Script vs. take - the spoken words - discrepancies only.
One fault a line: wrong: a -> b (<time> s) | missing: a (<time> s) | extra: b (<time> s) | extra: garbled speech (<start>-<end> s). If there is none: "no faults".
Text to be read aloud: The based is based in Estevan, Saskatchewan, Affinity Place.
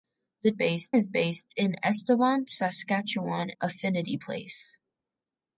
no faults